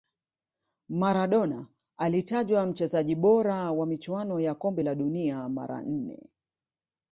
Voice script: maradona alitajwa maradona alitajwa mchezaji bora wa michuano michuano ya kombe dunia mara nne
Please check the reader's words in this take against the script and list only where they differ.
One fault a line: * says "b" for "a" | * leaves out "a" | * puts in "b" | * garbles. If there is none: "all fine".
* leaves out "maradona alitajwa"
* leaves out "michuano"
* puts in "la"